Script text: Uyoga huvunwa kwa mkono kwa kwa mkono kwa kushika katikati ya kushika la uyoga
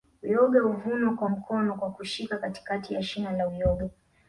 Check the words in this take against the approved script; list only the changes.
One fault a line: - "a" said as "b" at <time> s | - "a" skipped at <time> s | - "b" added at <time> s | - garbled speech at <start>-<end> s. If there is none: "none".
- "kwa mkono kwa" skipped at 1.9 s
- "kushika" said as "shina" at 3.0 s